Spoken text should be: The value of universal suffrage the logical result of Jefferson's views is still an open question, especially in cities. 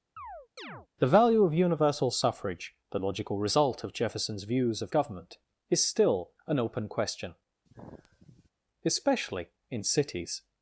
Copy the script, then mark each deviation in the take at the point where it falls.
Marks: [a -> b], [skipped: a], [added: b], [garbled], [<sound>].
[chirp] The value of universal suffrage the logical result of Jefferson's views [added: of government] is still an open question, [sigh] especially in cities.